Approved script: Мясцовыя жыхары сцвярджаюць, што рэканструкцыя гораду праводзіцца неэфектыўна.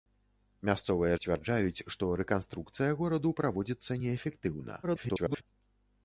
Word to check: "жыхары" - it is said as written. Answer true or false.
false